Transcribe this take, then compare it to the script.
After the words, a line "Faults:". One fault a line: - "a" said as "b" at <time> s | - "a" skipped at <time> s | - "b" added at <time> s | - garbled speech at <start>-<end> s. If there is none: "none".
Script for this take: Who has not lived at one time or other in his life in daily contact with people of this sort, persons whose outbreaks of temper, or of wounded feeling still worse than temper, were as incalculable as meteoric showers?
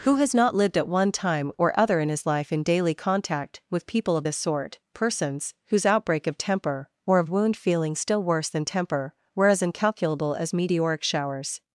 Who has not lived at one time or other in his life in daily contact with people of this sort, persons whose outbreak of temper, or of wound feeling still worse than temper, were as incalculable as meteoric showers?
Faults:
- "outbreaks" said as "outbreak" at 5.9 s
- "wounded" said as "wound" at 7.3 s